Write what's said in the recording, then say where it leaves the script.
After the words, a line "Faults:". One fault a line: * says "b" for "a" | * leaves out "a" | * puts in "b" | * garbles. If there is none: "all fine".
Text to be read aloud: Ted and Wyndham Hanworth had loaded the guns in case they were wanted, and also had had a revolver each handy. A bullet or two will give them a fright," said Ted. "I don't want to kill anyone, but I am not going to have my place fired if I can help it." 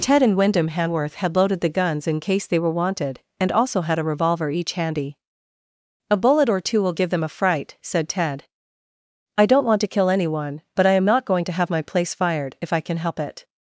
Ted and Wyndham Hanworth had loaded the guns in case they were wanted, and also had a revolver each handy. A bullet or two will give them a fright," said Ted. "I don't want to kill anyone, but I am not going to have my place fired if I can help it."
Faults:
* leaves out "had"